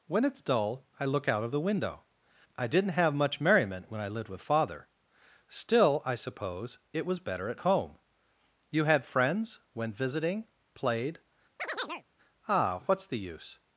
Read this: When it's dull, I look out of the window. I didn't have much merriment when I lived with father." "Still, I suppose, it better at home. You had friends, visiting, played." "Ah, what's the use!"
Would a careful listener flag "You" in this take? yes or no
no